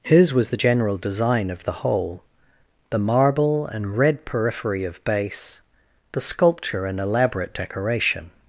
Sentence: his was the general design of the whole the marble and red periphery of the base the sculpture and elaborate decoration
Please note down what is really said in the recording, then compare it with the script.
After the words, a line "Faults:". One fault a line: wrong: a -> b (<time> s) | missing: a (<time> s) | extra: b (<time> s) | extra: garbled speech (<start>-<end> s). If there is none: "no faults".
his was the general design of the whole the marble and red periphery of base the sculpture and elaborate decoration
Faults:
missing: the (5.0 s)